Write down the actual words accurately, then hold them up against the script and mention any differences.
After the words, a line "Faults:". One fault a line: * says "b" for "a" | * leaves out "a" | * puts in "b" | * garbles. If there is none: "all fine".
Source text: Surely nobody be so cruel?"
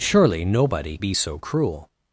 Surely nobody be so cruel?"
Faults:
all fine